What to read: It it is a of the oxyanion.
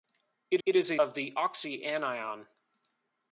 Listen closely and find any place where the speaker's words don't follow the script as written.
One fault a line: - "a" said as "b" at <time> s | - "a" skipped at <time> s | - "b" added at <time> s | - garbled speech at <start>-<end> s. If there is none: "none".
none